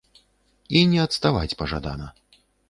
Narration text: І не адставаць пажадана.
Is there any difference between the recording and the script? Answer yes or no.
no